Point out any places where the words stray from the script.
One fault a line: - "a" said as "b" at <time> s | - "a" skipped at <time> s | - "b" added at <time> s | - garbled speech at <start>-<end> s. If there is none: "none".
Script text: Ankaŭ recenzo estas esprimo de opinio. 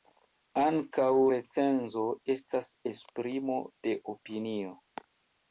none